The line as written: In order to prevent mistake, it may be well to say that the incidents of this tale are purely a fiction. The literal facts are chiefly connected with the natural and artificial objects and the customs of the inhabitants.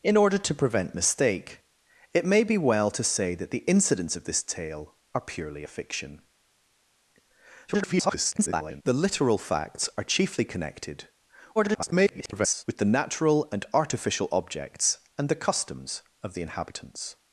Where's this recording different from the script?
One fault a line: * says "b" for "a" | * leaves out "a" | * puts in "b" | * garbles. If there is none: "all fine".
* garbles
* garbles